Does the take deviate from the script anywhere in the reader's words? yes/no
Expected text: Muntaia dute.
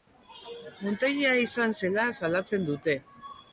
yes